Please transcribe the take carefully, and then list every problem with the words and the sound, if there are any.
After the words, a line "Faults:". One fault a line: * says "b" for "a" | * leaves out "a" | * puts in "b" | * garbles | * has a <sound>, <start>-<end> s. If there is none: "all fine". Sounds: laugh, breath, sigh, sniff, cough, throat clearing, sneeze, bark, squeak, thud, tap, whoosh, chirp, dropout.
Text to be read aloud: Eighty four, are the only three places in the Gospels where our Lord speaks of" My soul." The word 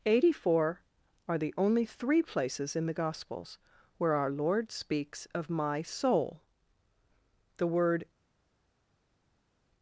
Eighty four, are the only three places in the Gospels where our Lord speaks of" My soul." The word
Faults:
all fine